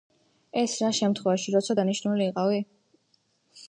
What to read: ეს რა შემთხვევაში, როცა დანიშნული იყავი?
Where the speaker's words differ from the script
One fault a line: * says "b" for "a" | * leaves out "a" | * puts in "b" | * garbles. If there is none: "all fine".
all fine